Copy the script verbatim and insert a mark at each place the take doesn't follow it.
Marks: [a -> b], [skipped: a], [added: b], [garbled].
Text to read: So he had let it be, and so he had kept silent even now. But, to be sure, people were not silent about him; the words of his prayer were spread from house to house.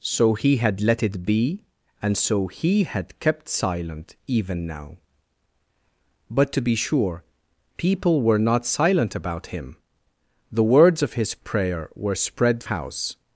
So he had let it be, and so he had kept silent even now. But, to be sure, people were not silent about him; the words of his prayer were spread [skipped: from house to] house.